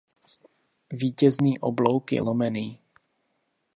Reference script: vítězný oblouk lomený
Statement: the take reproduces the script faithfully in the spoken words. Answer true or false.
false